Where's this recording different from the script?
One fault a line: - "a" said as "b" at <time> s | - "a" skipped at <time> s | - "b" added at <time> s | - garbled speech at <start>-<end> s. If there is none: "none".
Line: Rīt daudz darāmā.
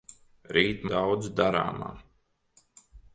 none